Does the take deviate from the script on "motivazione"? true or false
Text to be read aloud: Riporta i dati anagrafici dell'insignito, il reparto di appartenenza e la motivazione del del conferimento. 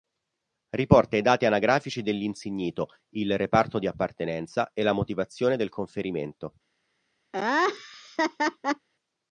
false